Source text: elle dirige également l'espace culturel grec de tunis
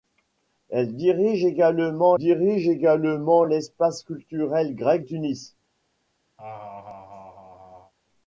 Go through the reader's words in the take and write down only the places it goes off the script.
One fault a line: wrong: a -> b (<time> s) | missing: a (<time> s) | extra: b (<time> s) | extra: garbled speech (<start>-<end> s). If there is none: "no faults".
extra: dirige également (2.2 s)
missing: de (5.1 s)